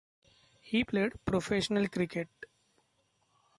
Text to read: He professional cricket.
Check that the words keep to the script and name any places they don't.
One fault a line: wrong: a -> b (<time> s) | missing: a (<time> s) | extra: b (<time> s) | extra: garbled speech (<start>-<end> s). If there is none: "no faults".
extra: played (0.8 s)